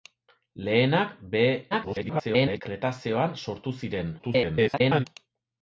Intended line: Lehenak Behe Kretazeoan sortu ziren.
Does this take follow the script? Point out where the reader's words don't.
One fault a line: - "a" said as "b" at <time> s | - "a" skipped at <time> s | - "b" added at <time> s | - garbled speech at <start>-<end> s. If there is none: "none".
- garbled speech at 1.7-2.6 s
- garbled speech at 4.2-5.1 s